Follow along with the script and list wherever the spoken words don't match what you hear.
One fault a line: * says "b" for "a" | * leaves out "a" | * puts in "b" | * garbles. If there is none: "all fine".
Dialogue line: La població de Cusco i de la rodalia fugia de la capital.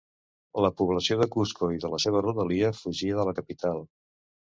* puts in "seva"